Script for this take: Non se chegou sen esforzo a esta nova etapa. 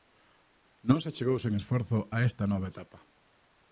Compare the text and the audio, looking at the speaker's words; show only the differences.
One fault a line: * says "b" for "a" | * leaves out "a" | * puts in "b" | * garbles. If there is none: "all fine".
all fine